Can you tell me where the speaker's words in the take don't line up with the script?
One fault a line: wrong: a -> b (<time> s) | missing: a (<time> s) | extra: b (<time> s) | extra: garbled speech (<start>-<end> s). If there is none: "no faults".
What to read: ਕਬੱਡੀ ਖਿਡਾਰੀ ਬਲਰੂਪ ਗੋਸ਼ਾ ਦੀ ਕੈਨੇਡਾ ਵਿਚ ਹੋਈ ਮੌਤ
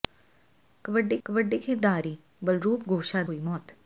extra: ਕਬੱਡੀ (1.3 s)
missing: ਦੀ ਕੈਨੇਡਾ ਵਿਚ (3.2 s)